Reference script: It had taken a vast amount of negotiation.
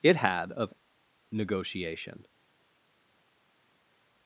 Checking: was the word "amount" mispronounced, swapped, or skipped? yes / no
yes